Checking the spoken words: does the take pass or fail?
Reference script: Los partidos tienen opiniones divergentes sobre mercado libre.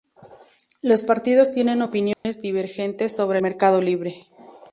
pass